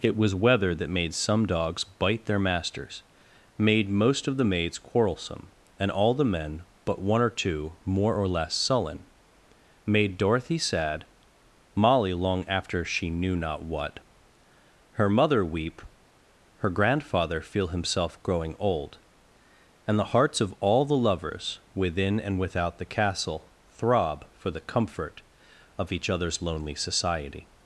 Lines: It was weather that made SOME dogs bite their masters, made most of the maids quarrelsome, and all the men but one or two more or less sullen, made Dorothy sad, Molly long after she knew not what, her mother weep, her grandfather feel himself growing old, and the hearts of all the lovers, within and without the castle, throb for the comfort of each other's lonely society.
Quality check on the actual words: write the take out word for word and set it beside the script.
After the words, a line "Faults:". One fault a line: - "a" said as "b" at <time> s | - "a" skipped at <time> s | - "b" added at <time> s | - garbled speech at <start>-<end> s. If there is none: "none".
It was weather that made SOME dogs bite their masters, made most of the maids quarrelsome, and all the men but one or two more or less sullen, made Dorothy sad, Molly long after she knew not what, her mother weep, her grandfather feel himself growing old, and the hearts of all the lovers, within and without the castle, throb for the comfort of each other's lonely society.
Faults:
none